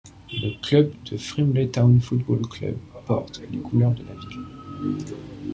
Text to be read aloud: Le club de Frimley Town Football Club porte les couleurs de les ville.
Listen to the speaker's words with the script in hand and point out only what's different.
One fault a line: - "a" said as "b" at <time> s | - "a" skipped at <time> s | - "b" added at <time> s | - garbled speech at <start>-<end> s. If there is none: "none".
- "les" said as "la" at 4.0 s